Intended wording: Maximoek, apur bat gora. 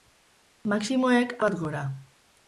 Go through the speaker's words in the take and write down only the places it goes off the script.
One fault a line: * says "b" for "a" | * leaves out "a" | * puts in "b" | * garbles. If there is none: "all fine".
* leaves out "apur"